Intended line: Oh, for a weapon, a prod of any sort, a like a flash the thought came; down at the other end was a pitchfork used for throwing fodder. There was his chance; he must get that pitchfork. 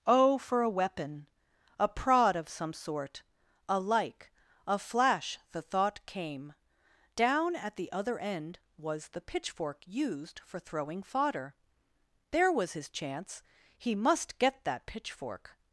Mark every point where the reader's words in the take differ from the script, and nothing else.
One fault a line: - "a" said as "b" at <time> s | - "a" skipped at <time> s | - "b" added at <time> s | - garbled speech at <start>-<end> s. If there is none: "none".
- "any" said as "some" at 2.5 s
- "a" said as "the" at 9.1 s